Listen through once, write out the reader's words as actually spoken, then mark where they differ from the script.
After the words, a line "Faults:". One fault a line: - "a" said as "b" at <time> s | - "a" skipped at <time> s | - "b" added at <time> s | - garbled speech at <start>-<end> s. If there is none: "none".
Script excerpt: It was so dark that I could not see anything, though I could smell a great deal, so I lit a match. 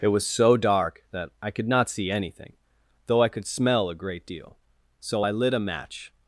It was so dark that I could not see anything, though I could smell a great deal, so I lit a match.
Faults:
none